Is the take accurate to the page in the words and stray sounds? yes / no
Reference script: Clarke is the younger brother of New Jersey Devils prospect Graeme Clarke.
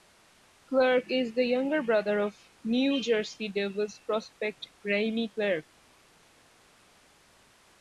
yes